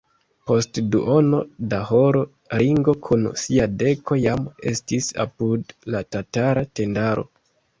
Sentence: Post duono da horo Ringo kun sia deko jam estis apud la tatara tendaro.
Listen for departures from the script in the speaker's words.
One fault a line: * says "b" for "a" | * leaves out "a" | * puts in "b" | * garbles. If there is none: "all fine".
all fine